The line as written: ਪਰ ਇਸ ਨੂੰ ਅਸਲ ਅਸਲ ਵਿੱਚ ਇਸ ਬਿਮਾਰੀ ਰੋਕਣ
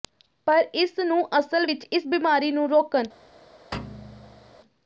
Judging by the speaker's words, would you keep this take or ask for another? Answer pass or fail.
fail